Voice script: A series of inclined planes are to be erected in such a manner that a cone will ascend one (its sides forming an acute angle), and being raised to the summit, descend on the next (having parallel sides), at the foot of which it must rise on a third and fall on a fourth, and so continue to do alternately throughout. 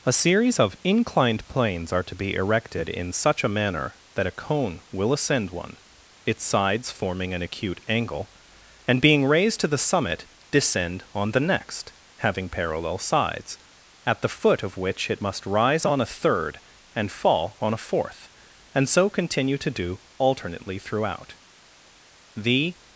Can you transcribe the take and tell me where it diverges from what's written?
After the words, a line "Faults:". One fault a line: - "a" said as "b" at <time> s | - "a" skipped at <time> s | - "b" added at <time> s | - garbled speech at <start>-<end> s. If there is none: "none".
A series of inclined planes are to be erected in such a manner that a cone will ascend one (its sides forming an acute angle), and being raised to the summit, descend on the next (having parallel sides), at the foot of which it must rise on a third and fall on a fourth, and so continue to do alternately throughout. The
Faults:
- "The" added at 22.3 s